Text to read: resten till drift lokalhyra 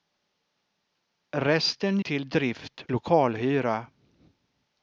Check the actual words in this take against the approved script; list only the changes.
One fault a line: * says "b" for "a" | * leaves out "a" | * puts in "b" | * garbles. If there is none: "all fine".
all fine